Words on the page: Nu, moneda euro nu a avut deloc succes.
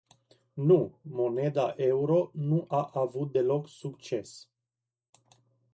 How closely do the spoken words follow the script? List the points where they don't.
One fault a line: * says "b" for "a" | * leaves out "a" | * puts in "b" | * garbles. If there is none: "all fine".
all fine